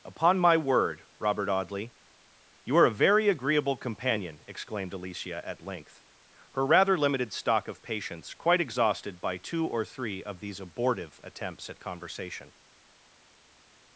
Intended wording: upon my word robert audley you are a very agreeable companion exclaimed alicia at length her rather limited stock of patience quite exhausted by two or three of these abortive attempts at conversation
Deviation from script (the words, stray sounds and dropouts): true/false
false